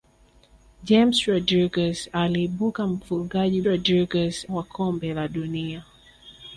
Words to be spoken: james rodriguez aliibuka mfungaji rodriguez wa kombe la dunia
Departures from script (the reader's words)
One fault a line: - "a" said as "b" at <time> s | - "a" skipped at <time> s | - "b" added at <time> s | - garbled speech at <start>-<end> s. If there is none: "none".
none